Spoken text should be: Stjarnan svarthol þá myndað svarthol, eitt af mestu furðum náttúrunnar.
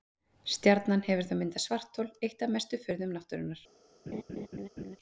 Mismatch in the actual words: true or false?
true